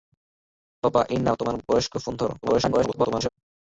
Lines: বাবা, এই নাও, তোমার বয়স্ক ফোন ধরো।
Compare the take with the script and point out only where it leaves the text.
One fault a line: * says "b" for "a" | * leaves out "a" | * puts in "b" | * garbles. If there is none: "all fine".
* garbles